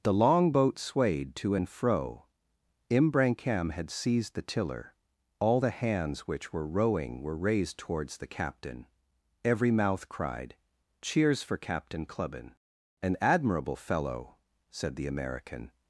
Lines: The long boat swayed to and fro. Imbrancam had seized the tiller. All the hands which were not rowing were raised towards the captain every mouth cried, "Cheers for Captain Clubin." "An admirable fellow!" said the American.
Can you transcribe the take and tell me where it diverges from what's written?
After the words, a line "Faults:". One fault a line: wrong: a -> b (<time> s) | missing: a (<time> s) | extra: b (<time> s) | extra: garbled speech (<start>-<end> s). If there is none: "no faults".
The long boat swayed to and fro. Imbrancam had seized the tiller. All the hands which were rowing were raised towards the captain every mouth cried, "Cheers for Captain Clubin." "An admirable fellow!" said the American.
Faults:
missing: not (6.7 s)